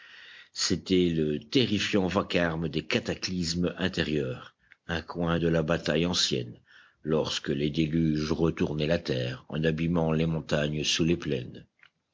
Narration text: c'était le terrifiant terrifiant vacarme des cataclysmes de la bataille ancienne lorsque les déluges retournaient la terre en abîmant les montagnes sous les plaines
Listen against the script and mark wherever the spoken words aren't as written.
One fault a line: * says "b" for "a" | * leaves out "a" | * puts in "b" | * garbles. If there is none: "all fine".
* leaves out "terrifiant"
* puts in "intérieurs un coin"